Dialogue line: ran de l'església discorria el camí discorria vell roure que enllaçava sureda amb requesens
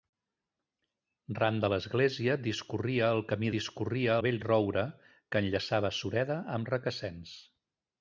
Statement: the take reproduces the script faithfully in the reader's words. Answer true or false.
true